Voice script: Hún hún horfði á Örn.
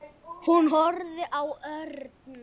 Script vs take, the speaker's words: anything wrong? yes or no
yes